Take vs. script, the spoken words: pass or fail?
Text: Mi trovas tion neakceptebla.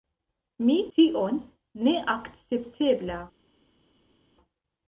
fail